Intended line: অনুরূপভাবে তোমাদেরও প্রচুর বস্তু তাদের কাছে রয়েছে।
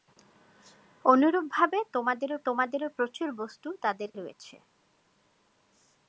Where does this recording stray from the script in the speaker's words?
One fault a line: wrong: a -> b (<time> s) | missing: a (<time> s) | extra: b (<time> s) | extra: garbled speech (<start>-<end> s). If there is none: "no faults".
extra: তোমাদেরও (2.4 s)
missing: কাছে (4.1 s)